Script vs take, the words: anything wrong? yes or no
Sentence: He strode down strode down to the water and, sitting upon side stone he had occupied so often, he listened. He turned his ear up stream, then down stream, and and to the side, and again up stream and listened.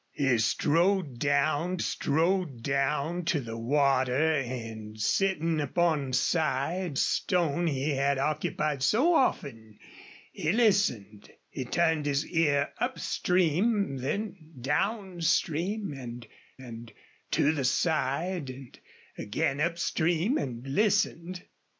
no